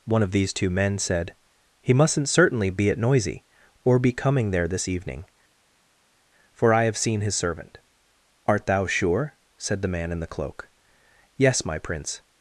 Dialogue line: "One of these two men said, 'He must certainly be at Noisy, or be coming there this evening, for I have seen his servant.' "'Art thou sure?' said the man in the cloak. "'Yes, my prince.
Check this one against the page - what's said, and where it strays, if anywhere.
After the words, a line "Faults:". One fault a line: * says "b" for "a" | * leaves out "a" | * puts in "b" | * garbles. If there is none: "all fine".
"One of these two men said, 'He mustn't certainly be at Noisy, or be coming there this evening, for I have seen his servant.' "'Art thou sure?' said the man in the cloak. "'Yes, my prince.
Faults:
* says "mustn't" for "must"